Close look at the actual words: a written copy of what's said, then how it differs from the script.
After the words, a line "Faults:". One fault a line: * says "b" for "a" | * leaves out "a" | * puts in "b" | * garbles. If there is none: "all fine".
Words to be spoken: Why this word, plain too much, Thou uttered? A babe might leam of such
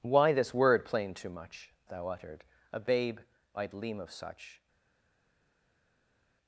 Why this word, plain too much, Thou uttered? A babe might leam of such
Faults:
all fine